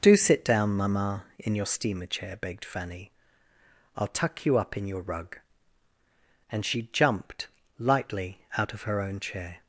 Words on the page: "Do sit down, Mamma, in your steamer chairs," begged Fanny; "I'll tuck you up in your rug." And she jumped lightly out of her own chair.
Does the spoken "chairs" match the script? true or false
false